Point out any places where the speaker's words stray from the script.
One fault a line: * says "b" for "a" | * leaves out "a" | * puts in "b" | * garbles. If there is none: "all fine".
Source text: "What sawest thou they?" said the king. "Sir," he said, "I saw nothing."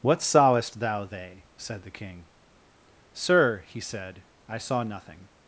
all fine